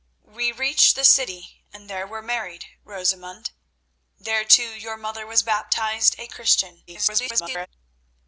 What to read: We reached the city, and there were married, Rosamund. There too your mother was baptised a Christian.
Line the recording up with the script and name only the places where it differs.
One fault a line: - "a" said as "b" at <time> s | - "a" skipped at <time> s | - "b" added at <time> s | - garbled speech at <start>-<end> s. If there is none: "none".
- garbled speech at 6.9-7.7 s